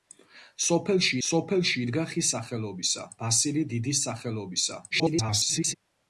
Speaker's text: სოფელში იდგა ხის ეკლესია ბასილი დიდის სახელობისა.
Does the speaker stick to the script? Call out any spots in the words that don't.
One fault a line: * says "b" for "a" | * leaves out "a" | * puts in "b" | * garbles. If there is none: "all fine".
* puts in "სოფელში"
* says "სახელობისა" for "ეკლესია"
* garbles